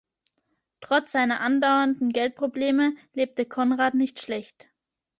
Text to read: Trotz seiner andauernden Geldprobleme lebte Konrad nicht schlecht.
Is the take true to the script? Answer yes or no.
yes